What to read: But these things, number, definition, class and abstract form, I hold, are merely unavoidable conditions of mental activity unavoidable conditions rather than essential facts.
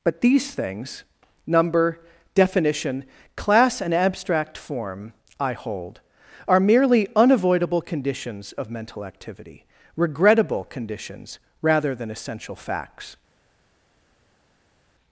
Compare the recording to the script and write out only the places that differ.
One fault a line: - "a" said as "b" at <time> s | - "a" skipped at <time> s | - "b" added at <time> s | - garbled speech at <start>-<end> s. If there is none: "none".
- "unavoidable" said as "regrettable" at 10.0 s